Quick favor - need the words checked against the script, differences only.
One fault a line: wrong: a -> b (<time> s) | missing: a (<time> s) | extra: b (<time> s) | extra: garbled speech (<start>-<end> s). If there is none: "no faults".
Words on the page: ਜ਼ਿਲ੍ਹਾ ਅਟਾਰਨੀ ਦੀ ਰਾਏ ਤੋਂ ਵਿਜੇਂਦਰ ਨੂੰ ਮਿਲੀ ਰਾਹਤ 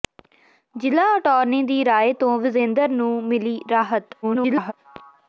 extra: garbled speech (4.2-4.7 s)